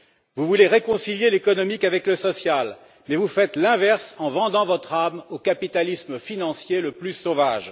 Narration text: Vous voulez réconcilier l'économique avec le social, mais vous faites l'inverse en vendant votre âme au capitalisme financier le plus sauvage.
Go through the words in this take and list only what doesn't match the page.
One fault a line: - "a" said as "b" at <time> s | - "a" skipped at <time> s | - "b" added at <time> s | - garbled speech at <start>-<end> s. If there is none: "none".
none